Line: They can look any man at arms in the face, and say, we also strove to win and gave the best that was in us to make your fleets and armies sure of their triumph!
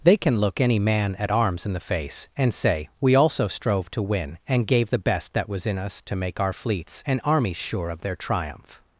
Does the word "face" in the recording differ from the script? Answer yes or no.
no